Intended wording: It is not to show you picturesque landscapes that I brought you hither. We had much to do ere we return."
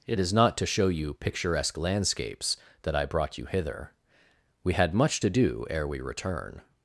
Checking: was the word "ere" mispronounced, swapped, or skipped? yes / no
no